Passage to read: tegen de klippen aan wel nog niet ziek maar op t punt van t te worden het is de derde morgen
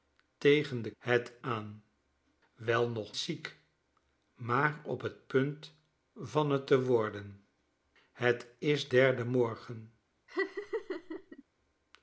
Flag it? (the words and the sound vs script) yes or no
yes